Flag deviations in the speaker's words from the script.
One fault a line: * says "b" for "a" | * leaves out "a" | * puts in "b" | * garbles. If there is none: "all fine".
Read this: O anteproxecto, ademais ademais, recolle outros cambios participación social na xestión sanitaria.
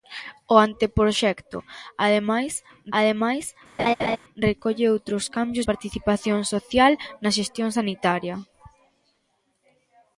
all fine